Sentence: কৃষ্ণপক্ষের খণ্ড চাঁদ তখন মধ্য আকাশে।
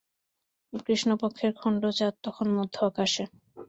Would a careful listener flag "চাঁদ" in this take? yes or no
no